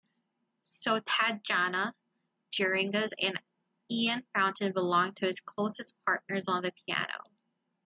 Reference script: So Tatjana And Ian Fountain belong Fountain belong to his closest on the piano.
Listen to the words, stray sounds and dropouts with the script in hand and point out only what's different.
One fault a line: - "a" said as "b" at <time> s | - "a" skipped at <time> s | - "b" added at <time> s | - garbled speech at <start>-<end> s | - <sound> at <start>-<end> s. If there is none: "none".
- "Geringas" added at 2.5 s
- "Fountain belong" skipped at 5.1 s
- "partners" added at 6.1 s